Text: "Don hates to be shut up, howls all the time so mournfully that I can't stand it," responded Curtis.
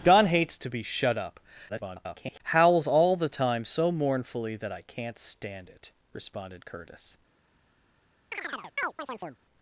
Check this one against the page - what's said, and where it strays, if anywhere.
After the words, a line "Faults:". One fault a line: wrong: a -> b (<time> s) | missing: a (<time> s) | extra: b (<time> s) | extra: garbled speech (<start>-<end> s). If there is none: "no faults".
"Don hates to be shut up, [garbled] howls all the time so mournfully that I can't stand it," responded Curtis.
Faults:
extra: garbled speech (1.7-2.4 s)